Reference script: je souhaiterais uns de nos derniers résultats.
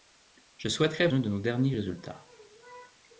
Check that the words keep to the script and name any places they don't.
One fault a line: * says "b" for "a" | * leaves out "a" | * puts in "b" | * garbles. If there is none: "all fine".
all fine